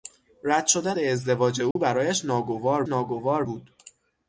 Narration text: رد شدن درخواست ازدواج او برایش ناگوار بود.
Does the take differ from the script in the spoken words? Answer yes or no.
yes